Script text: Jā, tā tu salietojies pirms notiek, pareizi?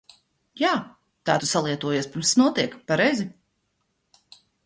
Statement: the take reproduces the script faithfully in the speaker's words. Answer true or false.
true